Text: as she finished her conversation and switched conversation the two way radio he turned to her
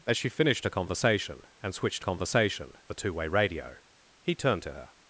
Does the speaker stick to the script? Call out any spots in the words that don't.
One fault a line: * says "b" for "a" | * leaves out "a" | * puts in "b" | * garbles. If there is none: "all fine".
all fine